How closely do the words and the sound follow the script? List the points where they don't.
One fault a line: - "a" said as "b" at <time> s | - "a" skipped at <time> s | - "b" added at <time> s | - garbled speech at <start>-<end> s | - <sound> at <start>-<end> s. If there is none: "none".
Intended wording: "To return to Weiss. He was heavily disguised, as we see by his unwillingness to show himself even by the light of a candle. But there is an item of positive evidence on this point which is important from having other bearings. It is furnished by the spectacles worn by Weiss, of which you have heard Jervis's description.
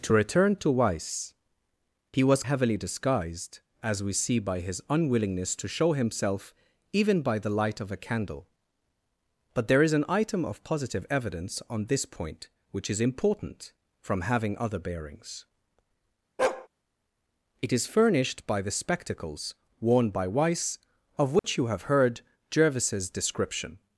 - bark at 16.4-16.7 s
- dropout at 21.4-21.4 s